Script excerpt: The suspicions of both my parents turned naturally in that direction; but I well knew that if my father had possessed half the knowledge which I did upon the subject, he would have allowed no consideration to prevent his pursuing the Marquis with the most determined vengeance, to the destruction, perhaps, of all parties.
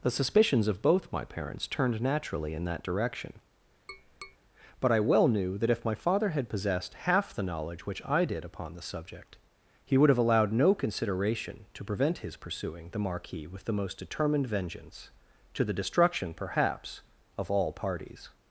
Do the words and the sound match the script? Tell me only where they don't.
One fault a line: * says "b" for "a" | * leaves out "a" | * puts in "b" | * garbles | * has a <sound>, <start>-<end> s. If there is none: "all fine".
* has a tap, 3.9-4.4 s